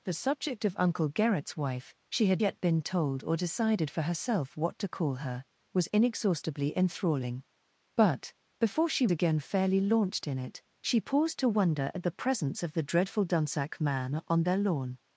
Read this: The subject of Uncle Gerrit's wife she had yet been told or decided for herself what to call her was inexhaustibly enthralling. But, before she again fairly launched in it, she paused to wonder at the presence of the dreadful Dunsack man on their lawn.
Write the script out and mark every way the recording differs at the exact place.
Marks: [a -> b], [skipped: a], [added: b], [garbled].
The subject of Uncle Gerrit's wife she had yet been told or decided for herself what to call her was inexhaustibly enthralling. But, before she again fairly launched in it, she paused to wonder at the presence of the dreadful Dunsack man on their lawn.